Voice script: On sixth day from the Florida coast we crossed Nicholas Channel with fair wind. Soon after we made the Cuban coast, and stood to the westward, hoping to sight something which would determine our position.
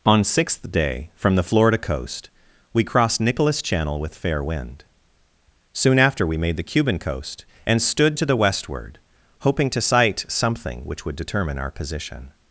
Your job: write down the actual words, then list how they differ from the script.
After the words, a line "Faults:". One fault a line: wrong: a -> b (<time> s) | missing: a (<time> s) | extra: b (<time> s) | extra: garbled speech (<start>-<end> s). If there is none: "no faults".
On sixth day from the Florida coast we crossed Nicholas Channel with fair wind. Soon after we made the Cuban coast, and stood to the westward, hoping to sight something which would determine our position.
Faults:
no faults